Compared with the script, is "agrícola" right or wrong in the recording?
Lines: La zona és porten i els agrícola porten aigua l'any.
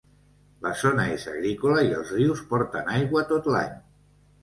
wrong